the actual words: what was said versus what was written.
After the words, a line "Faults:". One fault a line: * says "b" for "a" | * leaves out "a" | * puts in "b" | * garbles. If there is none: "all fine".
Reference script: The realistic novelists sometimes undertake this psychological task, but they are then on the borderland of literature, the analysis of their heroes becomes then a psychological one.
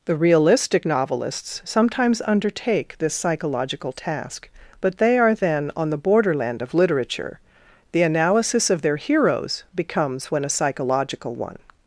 The realistic novelists sometimes undertake this psychological task, but they are then on the borderland of literature, the analysis of their heroes becomes when a psychological one.
Faults:
* says "when" for "then"